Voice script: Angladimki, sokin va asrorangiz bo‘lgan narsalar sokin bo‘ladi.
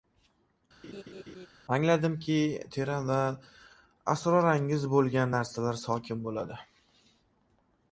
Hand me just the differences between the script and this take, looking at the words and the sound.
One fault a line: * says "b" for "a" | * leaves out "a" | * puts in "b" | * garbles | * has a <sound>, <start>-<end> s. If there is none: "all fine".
* has a laugh, 0.8-1.5 s
* says "teran" for "sokin"